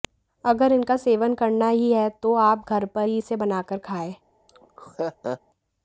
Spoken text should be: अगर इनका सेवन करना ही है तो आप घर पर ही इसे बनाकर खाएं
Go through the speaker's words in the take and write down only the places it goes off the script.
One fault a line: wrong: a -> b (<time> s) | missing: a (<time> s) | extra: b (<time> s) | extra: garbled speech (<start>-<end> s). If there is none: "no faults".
no faults